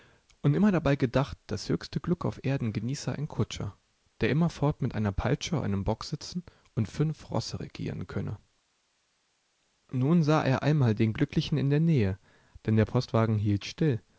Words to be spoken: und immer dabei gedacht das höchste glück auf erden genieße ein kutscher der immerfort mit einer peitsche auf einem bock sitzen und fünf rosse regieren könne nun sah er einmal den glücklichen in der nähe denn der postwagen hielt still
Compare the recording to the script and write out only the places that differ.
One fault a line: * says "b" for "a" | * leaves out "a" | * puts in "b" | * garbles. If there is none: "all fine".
* leaves out "auf"